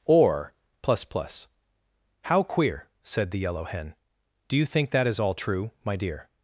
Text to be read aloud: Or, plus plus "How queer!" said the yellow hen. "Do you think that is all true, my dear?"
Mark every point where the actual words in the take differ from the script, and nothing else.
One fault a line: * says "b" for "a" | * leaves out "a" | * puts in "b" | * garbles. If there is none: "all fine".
all fine